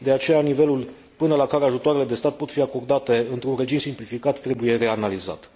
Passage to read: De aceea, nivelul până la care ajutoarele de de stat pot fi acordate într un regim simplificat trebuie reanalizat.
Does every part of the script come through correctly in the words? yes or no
no